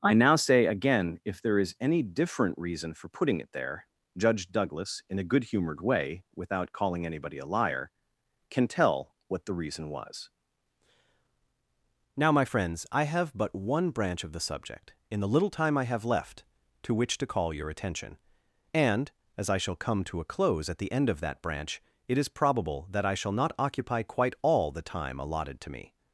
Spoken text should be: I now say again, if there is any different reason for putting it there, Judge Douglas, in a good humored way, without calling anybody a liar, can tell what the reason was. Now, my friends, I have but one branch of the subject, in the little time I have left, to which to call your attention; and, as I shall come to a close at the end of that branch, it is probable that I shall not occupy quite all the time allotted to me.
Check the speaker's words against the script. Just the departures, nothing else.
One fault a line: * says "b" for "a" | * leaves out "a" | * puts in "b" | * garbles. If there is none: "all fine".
all fine